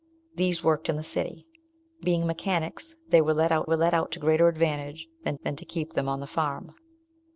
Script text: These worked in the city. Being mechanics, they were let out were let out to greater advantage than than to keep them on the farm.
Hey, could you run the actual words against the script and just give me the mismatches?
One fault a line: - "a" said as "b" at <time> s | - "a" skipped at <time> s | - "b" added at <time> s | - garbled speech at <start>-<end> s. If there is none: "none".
none